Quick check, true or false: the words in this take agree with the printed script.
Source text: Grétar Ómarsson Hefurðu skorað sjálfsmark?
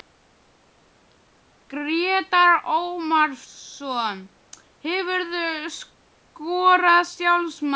true